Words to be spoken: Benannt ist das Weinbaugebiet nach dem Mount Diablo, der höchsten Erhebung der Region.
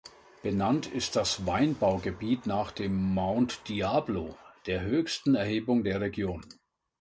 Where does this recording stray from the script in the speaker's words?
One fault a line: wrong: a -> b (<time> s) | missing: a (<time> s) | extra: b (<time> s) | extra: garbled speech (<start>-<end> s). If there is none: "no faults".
no faults